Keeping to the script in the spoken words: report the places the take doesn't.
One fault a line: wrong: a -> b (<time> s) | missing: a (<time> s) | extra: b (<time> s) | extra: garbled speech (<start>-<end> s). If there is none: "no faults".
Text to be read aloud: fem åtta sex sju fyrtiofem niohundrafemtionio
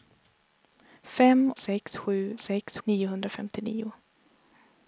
missing: åtta (1.5 s)
wrong: fyrtiofem -> sex (2.4 s)